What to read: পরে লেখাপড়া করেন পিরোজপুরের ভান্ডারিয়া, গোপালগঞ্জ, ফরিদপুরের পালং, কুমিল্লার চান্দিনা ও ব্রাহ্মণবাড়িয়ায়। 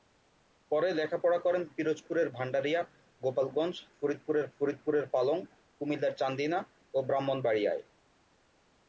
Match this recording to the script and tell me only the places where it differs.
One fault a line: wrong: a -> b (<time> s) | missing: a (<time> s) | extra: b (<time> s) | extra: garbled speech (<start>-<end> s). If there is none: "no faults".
extra: ফরিদপুরের (4.6 s)